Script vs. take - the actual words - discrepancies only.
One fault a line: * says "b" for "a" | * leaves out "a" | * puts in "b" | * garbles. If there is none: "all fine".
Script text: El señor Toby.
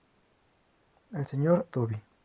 all fine